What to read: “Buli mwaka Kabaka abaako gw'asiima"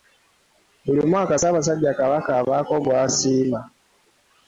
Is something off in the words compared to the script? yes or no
yes